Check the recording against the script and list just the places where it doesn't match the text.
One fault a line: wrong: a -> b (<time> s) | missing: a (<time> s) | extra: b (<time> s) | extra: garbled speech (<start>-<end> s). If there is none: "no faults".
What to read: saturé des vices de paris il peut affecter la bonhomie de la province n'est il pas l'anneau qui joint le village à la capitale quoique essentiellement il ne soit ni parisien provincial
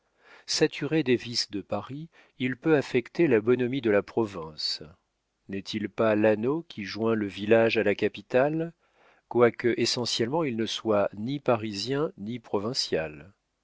extra: ni (12.2 s)